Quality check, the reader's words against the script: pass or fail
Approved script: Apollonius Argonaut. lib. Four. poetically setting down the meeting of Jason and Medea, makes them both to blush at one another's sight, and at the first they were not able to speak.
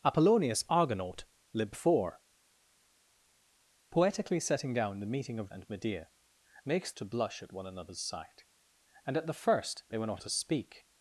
fail